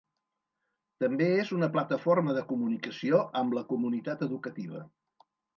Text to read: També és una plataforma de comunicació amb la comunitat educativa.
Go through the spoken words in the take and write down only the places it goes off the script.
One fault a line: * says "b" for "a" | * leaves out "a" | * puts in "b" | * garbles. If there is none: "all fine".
all fine